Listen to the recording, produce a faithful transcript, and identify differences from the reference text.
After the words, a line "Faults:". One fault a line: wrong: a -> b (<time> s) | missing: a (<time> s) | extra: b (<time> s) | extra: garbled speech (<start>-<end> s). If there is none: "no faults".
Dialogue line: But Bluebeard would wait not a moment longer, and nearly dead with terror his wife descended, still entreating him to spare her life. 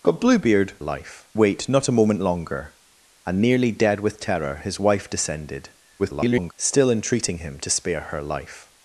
But Bluebeard life wait not a moment longer, and nearly dead with terror his wife descended, [garbled] still entreating him to spare her life.
Faults:
wrong: would -> life (0.8 s)
extra: garbled speech (6.0-6.5 s)